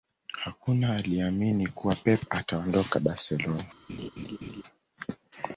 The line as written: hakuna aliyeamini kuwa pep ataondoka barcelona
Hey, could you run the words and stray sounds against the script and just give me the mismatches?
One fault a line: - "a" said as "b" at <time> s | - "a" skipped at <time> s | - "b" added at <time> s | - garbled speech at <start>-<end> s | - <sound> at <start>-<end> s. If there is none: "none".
- laugh at 3.9-4.6 s